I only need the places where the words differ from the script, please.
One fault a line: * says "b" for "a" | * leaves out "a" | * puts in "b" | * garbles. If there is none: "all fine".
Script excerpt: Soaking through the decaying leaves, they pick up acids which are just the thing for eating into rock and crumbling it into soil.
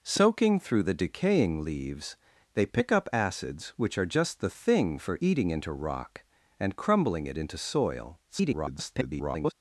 * garbles